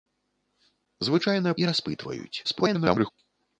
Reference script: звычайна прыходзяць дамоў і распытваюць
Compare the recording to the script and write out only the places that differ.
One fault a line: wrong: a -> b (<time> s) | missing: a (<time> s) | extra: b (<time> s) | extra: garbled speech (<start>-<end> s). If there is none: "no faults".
missing: прыходзяць дамоў (1.5 s)
extra: garbled speech (2.4-3.1 s)